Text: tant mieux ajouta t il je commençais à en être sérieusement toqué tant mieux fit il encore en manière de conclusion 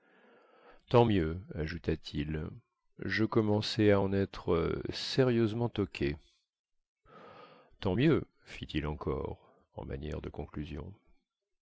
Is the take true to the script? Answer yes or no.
yes